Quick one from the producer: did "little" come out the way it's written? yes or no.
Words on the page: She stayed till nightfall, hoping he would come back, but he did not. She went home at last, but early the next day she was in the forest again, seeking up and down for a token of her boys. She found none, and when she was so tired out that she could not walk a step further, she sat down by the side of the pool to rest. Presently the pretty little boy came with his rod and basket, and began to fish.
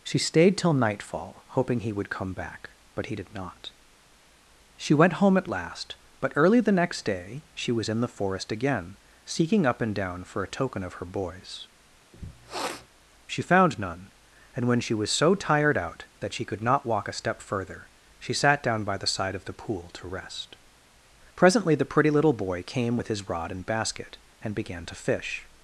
yes